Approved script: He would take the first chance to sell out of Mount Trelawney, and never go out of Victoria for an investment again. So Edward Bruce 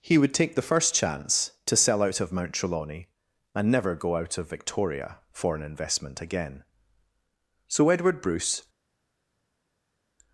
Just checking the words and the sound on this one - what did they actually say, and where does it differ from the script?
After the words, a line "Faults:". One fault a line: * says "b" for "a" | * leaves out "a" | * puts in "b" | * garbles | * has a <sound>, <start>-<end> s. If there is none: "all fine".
He would take the first chance to sell out of Mount Trelawney, and never go out of Victoria for an investment again. So Edward Bruce
Faults:
all fine